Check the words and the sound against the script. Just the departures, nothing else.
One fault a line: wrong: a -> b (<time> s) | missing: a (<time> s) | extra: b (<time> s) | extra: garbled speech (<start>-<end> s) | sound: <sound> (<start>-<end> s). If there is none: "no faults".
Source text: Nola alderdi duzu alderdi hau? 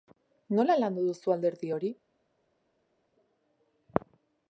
wrong: alderdi -> landu (0.8 s)
wrong: hau -> hori (1.7 s)